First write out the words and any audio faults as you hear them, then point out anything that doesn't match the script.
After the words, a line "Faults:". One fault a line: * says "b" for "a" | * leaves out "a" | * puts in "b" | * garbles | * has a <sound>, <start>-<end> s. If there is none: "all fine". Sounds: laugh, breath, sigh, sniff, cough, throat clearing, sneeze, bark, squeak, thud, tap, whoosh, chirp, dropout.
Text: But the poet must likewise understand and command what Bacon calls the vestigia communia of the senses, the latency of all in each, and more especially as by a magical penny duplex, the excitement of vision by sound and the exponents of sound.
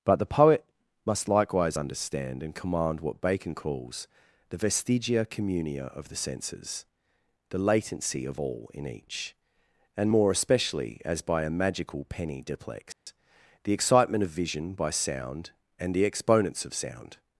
But the poet must likewise understand and command what Bacon calls the vestigia communia of the senses, the latency of all in each, and more especially as by a magical penny duplex, the excitement of vision by sound and the exponents of sound.
Faults:
* has a dropout, 12.9-13.1 s